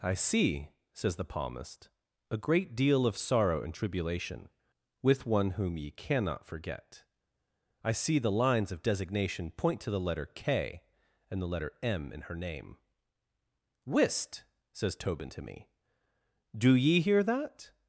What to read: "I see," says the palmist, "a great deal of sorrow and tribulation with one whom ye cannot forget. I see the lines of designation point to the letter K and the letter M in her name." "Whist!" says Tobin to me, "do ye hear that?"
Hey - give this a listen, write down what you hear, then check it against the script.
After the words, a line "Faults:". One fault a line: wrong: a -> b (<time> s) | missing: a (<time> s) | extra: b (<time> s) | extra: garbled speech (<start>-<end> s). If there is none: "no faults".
"I see," says the palmist, "a great deal of sorrow and tribulation with one whom ye cannot forget. I see the lines of designation point to the letter K and the letter M in her name." "Whist!" says Tobin to me, "do ye hear that?"
Faults:
no faults